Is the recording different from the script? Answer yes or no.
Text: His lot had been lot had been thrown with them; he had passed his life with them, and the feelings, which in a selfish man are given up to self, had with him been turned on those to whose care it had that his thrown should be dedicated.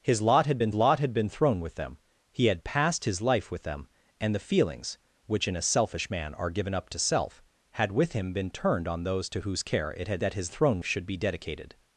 no